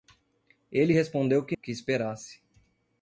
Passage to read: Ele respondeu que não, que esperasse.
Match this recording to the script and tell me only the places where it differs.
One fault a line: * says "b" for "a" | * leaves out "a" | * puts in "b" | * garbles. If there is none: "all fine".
* leaves out "não"